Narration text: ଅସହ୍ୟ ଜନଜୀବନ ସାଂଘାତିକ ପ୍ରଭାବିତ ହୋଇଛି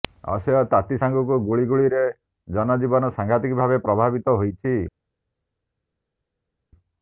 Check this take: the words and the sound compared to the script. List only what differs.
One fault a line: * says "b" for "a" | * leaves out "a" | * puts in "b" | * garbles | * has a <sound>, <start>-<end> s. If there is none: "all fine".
* puts in "ତାତି ସାଙ୍ଗକୁ ଗୁଳୁଗୁଳିରେ"
* puts in "ଭାବେ"